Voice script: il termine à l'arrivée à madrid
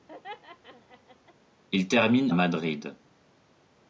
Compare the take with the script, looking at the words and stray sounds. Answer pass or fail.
fail